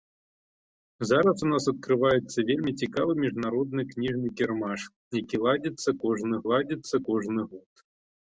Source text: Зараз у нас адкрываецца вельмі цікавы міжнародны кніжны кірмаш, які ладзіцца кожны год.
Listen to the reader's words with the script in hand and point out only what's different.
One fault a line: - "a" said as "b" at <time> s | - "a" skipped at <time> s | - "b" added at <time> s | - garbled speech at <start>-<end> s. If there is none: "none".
- "ладзіцца кожны" added at 6.5 s